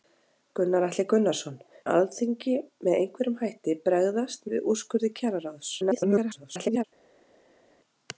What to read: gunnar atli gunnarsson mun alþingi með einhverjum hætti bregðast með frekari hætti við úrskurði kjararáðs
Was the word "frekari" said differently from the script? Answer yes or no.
yes